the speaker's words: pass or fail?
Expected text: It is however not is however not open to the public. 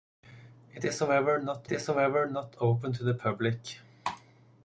pass